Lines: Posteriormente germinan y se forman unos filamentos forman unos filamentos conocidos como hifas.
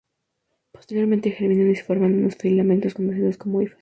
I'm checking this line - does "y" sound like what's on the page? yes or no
yes